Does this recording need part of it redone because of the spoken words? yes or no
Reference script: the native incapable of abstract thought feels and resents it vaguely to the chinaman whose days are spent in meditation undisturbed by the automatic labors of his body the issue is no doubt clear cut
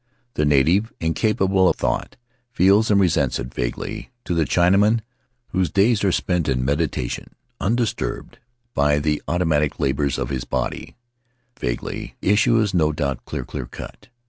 yes